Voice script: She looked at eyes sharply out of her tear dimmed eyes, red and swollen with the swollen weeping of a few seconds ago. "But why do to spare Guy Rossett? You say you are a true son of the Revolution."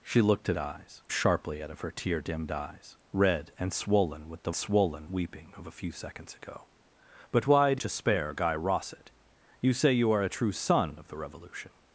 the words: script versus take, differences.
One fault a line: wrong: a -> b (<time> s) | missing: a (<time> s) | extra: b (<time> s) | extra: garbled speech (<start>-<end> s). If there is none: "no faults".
no faults